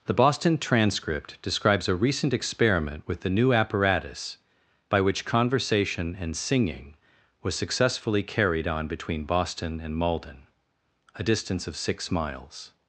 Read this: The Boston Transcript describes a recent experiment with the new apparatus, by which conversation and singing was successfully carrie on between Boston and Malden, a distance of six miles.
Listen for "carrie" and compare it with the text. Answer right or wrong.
wrong